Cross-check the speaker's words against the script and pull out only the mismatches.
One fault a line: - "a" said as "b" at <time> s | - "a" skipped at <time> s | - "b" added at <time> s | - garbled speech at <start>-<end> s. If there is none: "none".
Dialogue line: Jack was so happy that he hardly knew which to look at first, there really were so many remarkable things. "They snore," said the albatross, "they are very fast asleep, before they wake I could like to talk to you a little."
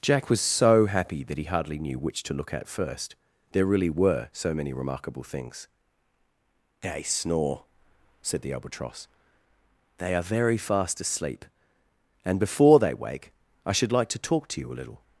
- "and" added at 12.2 s
- "could" said as "should" at 13.7 s